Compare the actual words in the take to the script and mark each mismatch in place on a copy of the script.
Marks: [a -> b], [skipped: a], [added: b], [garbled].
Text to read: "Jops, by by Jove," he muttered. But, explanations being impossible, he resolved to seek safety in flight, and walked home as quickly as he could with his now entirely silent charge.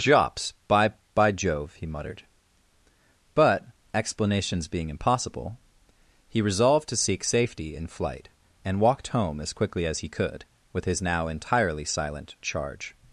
"Jops, by by Jove," he muttered. But, explanations being impossible, he resolved to seek safety in flight, and walked home as quickly as he could with his now entirely silent charge.